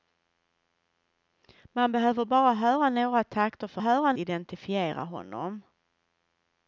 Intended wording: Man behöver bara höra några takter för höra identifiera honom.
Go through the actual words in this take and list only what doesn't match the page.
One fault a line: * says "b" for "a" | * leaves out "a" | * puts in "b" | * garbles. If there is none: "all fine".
all fine